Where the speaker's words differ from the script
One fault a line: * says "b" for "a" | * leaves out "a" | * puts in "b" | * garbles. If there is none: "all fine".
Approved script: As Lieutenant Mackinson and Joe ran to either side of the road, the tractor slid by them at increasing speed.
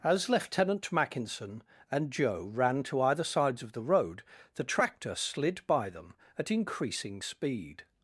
* says "sides" for "side"